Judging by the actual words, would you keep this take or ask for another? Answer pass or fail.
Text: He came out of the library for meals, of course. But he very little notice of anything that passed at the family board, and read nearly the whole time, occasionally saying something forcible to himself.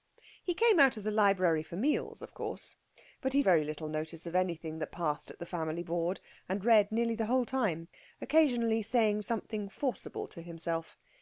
pass